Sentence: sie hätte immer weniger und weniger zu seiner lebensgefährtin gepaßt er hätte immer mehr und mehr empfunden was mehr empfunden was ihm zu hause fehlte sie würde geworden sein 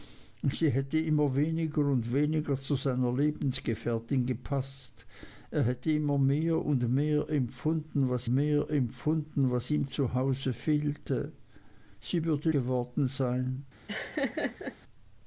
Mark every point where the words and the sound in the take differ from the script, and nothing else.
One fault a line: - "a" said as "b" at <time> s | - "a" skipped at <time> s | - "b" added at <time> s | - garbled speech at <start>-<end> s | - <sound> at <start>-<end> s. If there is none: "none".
- laugh at 13.9-14.8 s